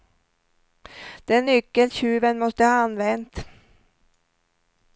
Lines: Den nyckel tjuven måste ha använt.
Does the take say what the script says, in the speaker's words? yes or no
yes